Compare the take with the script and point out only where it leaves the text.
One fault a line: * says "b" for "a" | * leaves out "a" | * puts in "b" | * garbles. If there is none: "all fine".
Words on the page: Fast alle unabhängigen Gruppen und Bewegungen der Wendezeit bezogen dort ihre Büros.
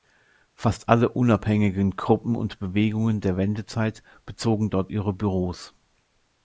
all fine